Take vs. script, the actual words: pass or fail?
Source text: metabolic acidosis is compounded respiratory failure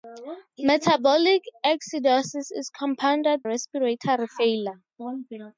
pass